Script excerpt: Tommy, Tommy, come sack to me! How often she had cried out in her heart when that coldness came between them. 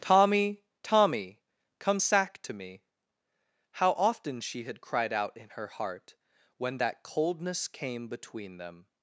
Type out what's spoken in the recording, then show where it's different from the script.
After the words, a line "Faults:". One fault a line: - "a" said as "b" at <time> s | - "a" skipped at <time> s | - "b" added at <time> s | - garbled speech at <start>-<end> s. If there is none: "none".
Tommy, Tommy, come sack to me! How often she had cried out in her heart when that coldness came between them.
Faults:
none